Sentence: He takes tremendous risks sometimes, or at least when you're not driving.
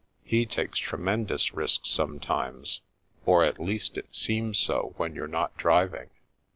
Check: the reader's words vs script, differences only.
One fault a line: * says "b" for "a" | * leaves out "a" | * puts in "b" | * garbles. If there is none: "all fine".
* puts in "it seems so"